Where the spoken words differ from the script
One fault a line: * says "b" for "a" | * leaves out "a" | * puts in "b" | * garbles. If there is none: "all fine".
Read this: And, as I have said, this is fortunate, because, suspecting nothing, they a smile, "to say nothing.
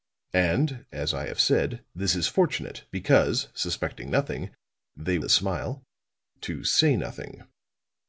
all fine